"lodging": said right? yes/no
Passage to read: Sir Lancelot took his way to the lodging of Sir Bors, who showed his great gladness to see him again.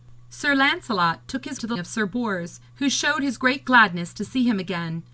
no